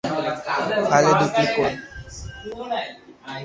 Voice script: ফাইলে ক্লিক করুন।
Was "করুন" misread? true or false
false